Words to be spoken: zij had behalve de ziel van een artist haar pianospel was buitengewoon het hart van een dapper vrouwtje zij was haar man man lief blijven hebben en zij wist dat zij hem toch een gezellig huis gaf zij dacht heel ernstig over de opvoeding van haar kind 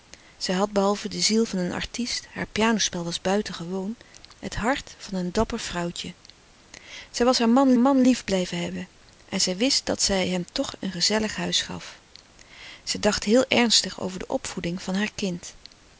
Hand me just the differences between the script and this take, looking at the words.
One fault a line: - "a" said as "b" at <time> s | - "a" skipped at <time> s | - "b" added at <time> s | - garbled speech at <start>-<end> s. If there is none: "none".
none